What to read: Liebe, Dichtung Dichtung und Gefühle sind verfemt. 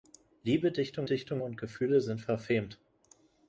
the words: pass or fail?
pass